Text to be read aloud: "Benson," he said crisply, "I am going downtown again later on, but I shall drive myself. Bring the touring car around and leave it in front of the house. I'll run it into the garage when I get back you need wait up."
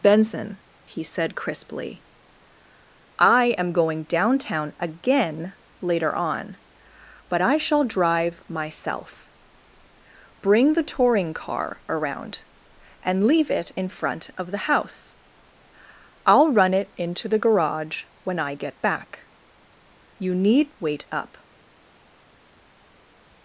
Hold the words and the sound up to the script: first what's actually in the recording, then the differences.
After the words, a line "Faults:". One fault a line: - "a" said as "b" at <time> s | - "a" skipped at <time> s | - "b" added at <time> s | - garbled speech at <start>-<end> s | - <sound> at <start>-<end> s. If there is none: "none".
"Benson," he said crisply, "I am going downtown again later on, but I shall drive myself. Bring the touring car around and leave it in front of the house. I'll run it into the garage when I get back you need wait up."
Faults:
none